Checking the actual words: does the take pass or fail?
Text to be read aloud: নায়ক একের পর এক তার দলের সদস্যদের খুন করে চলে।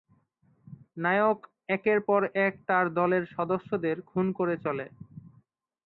pass